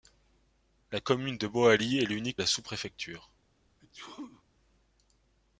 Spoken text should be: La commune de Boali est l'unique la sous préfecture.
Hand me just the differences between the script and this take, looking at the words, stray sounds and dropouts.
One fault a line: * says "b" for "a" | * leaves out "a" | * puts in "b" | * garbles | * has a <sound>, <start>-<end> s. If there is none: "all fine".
* has a sneeze, 3.8-4.4 s